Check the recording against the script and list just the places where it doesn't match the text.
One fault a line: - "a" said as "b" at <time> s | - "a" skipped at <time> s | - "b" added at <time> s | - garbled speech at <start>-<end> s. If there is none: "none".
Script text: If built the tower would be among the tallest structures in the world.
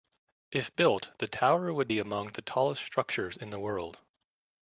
none